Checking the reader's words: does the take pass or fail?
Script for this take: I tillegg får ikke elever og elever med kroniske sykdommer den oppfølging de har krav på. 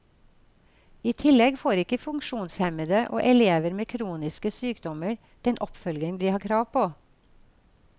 fail